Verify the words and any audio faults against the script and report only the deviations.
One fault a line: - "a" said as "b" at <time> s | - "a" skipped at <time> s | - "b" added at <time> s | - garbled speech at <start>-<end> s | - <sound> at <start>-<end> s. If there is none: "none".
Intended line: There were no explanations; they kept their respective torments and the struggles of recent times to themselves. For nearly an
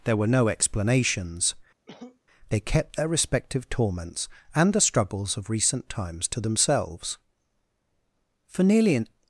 - cough at 1.9-2.2 s